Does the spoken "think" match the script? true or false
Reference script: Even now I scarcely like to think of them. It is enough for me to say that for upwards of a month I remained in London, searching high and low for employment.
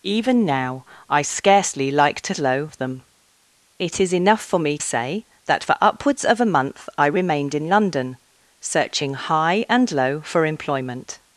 false